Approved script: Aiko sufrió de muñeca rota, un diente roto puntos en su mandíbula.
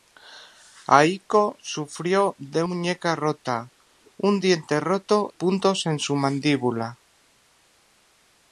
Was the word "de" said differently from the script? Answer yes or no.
no